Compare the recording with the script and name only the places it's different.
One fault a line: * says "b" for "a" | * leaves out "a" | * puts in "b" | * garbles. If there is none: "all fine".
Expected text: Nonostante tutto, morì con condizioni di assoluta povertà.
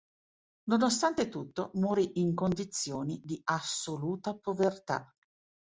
* says "in" for "con"